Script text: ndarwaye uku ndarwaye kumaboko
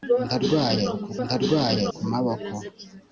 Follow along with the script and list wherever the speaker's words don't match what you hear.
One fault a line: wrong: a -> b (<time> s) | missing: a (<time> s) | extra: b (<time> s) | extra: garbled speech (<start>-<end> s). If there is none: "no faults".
no faults